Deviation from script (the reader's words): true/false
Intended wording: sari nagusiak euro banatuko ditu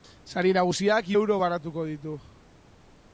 false